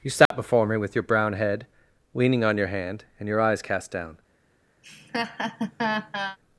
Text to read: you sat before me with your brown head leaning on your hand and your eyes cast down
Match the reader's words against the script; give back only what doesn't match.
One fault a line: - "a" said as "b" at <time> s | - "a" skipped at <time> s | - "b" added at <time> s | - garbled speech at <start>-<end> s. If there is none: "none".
none